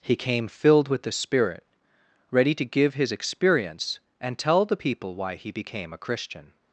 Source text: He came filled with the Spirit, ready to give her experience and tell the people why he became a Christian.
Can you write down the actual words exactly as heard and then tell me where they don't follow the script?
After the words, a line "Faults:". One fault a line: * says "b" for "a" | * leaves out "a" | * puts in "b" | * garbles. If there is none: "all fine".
He came filled with the Spirit, ready to give his experience and tell the people why he became a Christian.
Faults:
* says "his" for "her"